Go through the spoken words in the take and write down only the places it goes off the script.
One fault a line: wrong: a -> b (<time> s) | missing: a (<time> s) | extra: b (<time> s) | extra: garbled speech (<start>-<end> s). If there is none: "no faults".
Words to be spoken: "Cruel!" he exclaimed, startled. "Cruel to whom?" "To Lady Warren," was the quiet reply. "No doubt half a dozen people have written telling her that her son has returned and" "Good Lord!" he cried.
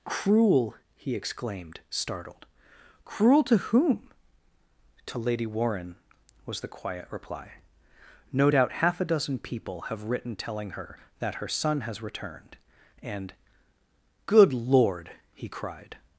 no faults